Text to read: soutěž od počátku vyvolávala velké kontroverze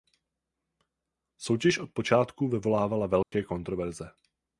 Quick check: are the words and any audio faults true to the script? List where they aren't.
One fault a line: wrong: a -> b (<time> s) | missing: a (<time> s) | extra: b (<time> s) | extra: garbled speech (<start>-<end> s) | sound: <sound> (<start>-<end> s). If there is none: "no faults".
sound: dropout (3.2-3.3 s)